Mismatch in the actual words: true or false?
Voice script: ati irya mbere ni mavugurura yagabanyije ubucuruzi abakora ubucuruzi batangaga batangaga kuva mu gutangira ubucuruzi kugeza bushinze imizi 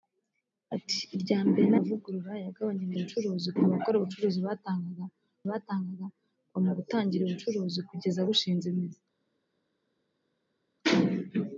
false